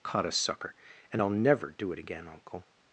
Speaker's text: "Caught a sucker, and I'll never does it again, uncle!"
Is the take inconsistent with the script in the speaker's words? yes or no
yes